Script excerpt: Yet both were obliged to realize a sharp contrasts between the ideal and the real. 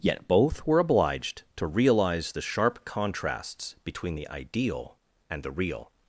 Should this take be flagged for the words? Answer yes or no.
yes